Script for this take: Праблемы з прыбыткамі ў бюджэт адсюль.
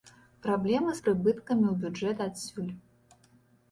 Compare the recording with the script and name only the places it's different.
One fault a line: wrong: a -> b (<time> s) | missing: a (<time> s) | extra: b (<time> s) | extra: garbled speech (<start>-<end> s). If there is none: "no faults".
no faults